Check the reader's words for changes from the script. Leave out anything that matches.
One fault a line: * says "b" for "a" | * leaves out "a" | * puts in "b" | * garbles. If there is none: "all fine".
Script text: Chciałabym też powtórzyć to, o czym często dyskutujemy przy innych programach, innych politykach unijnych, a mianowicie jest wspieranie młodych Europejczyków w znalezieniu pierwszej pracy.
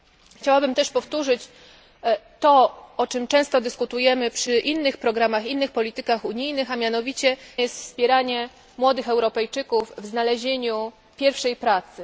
all fine